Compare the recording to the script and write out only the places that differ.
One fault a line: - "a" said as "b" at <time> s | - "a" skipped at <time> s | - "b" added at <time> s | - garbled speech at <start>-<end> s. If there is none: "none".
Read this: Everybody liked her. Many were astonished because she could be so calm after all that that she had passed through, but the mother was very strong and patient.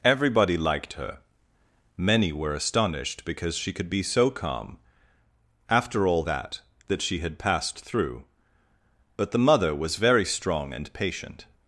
none